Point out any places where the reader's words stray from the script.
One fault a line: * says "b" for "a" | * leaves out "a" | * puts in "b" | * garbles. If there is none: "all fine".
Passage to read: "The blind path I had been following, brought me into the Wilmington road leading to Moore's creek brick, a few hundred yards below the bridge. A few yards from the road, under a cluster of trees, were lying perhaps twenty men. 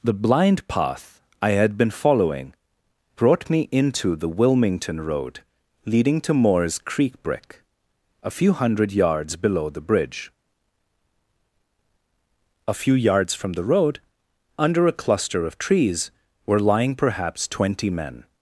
all fine